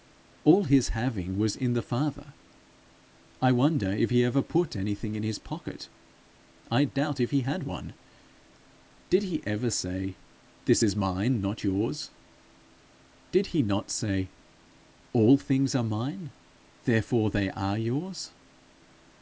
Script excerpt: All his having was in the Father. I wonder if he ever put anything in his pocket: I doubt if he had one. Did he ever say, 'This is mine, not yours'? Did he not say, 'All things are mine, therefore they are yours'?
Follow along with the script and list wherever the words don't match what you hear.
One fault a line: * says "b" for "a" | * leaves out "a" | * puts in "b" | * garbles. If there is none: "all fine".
all fine